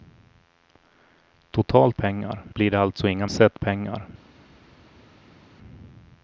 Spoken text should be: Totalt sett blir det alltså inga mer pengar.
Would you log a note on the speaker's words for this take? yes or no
yes